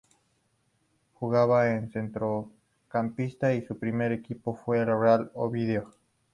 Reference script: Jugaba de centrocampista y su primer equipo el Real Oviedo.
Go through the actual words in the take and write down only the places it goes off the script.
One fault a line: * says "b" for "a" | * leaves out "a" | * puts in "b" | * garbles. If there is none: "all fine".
* puts in "fue"